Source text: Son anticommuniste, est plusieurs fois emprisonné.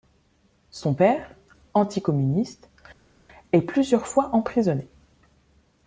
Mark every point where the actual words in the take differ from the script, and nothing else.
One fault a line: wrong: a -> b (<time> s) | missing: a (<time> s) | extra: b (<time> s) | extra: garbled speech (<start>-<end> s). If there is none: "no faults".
extra: père (0.9 s)